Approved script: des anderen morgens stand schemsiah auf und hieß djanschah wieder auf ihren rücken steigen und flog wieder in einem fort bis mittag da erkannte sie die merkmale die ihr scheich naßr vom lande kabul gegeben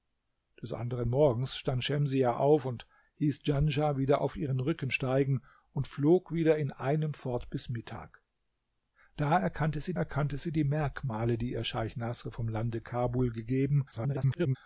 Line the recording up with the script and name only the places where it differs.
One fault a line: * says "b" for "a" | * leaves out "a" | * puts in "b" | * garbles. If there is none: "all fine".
* puts in "erkannte sie"
* garbles